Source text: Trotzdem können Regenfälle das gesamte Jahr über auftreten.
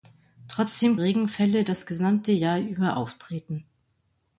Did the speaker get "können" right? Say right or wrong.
wrong